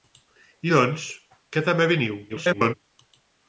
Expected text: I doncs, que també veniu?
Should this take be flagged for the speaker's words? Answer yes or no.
yes